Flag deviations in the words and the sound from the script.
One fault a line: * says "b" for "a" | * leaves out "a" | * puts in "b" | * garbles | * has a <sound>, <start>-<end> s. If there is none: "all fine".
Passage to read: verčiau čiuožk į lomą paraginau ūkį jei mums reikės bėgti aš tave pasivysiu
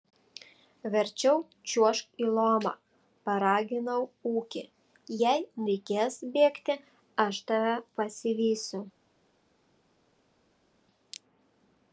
* leaves out "mums"